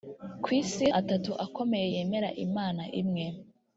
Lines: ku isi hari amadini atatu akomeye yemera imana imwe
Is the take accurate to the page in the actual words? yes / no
no